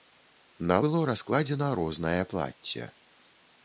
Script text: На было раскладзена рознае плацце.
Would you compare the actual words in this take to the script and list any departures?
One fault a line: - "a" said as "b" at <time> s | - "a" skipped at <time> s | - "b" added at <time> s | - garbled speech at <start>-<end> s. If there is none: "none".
none